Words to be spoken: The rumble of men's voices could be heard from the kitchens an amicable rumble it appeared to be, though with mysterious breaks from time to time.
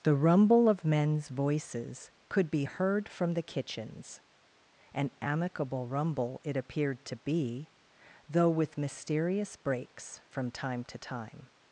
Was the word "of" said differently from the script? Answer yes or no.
no